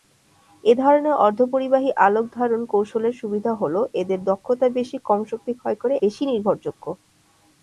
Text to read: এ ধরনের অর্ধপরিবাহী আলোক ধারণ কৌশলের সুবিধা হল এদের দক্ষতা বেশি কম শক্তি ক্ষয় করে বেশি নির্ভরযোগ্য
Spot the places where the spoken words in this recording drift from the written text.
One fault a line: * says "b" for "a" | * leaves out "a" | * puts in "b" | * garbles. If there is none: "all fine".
all fine